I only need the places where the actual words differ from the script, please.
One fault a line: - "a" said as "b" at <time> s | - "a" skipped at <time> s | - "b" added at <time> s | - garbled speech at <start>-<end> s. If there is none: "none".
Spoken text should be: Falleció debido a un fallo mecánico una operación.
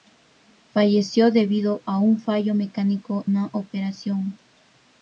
none